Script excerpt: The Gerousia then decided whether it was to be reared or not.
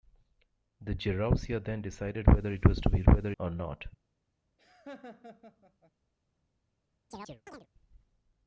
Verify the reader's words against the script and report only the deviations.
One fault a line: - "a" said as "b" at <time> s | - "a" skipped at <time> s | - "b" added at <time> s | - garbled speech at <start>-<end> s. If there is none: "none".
- "reared" said as "whether" at 3.0 s